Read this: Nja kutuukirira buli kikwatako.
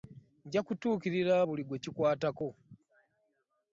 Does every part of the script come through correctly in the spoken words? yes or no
no